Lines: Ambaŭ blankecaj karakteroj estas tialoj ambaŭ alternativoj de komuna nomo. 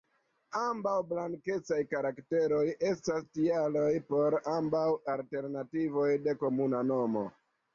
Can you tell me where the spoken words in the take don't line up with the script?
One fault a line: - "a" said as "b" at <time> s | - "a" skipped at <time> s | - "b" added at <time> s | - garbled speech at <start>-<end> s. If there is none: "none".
- "por" added at 4.1 s